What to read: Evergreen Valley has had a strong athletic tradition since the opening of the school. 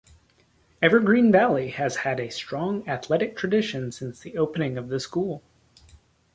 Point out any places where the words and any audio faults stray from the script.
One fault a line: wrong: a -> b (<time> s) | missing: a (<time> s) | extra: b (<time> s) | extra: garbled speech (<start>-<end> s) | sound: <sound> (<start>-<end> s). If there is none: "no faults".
no faults